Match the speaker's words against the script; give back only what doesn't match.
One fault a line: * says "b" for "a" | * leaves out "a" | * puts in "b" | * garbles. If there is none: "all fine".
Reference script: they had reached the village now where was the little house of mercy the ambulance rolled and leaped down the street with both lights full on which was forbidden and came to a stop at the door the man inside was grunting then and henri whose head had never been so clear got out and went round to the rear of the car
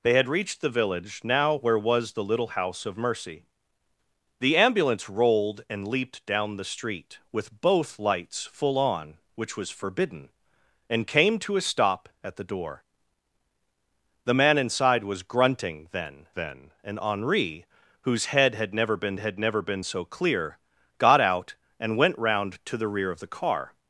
* puts in "then"
* puts in "had never been"